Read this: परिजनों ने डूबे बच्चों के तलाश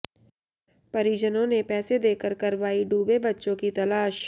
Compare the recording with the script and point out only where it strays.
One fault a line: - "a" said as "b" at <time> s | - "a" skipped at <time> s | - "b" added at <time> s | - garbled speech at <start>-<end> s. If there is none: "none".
- "पैसे देकर करवाई" added at 1.6 s
- "के" said as "की" at 3.5 s